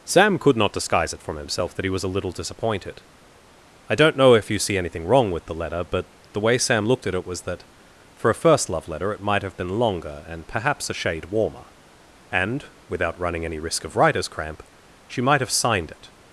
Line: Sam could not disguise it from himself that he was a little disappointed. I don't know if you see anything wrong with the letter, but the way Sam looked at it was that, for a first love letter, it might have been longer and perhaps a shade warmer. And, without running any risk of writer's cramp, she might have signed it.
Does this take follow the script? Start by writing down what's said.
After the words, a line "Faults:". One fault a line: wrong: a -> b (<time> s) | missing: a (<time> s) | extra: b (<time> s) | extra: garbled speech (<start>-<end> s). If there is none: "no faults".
Sam could not disguise it from himself that he was a little disappointed. I don't know if you see anything wrong with the letter, but the way Sam looked at it was that, for a first love letter, it might have been longer and perhaps a shade warmer. And, without running any risk of writer's cramp, she might have signed it.
Faults:
no faults